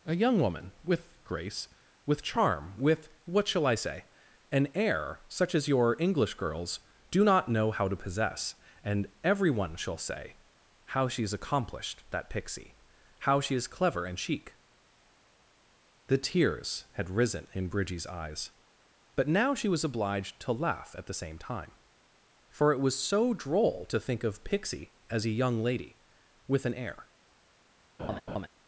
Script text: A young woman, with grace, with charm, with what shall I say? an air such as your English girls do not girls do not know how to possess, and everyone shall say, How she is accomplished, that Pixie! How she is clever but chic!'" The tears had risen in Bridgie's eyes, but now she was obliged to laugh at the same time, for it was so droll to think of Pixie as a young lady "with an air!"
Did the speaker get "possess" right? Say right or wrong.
right